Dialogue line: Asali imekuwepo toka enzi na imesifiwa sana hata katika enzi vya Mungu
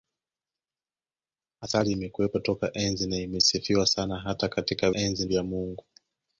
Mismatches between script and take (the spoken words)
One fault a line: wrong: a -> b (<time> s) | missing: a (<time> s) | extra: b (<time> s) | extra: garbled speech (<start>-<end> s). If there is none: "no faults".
no faults